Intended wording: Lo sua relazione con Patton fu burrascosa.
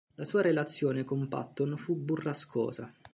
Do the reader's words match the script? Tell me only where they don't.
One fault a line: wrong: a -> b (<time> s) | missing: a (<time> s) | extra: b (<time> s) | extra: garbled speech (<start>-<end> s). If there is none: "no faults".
wrong: Lo -> La (0.1 s)